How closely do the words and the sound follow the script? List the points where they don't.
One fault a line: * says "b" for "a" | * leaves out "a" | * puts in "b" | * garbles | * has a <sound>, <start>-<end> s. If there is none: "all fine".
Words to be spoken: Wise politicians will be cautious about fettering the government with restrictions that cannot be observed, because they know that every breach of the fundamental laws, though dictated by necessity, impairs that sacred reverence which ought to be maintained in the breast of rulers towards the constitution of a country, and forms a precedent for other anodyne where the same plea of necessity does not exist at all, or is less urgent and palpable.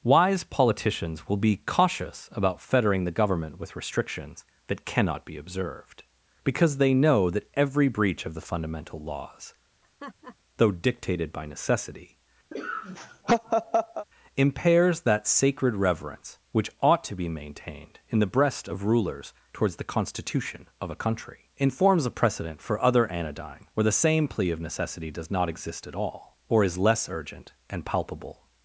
* has a laugh, 9.8-10.4 s
* has a laugh, 12.5-14.1 s